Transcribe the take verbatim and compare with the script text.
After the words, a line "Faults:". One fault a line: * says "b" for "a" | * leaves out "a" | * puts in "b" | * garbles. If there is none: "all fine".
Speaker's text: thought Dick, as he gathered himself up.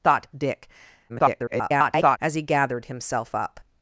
thought Dick, [garbled] as he gathered himself up.
Faults:
* garbles